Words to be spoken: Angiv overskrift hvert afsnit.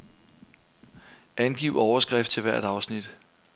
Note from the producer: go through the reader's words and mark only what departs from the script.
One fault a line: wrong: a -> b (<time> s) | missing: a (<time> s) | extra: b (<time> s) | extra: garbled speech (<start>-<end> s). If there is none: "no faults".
extra: til (2.3 s)